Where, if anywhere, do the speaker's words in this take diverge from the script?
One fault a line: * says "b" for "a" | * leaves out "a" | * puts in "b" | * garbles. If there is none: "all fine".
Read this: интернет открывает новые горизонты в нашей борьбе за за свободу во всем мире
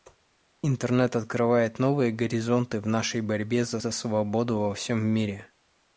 all fine